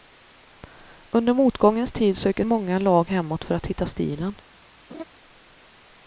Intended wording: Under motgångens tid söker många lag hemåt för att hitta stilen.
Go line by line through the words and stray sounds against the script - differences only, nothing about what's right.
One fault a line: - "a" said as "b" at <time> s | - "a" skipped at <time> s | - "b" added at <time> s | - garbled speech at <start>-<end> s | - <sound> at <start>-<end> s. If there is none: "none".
- laugh at 4.9-5.0 s